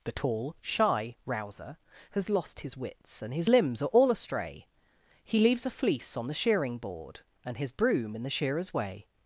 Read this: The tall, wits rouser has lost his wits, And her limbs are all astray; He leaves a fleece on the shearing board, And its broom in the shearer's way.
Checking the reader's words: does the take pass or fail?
fail